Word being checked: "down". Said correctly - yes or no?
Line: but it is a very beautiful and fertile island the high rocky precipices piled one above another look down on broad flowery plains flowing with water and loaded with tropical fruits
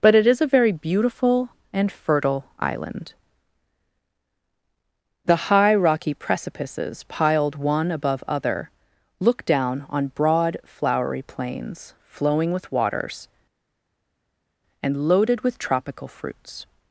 yes